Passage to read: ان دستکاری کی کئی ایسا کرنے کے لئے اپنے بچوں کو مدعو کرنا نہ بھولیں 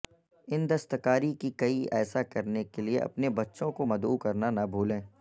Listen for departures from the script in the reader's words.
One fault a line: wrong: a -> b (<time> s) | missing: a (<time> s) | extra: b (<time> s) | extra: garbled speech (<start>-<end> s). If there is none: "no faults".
no faults